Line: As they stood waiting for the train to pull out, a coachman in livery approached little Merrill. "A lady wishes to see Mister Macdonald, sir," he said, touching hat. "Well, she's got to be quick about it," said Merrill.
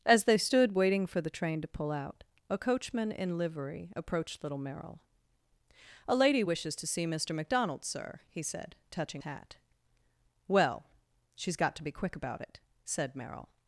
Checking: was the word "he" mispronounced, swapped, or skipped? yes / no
no